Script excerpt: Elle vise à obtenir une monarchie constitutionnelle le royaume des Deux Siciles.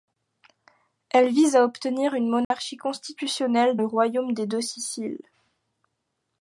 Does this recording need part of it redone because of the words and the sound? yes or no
yes